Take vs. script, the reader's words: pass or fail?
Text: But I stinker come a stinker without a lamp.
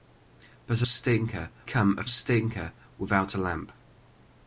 pass